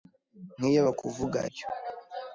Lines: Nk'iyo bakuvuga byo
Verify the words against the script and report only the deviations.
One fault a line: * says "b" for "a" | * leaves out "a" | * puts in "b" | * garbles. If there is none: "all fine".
all fine